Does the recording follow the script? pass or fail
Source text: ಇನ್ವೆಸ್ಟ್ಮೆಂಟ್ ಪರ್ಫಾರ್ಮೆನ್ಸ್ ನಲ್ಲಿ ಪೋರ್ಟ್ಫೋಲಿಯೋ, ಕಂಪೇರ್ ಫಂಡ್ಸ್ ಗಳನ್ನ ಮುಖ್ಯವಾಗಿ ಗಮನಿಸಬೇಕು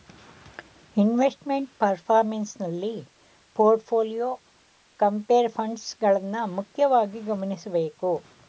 pass